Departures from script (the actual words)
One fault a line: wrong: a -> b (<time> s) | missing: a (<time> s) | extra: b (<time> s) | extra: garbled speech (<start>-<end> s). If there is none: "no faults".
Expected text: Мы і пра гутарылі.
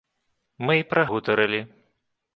no faults